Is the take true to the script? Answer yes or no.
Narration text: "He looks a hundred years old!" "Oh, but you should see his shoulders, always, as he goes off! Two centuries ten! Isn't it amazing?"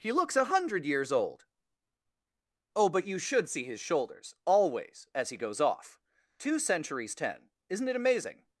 yes